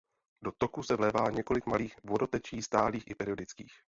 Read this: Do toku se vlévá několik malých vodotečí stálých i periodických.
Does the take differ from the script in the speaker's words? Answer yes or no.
no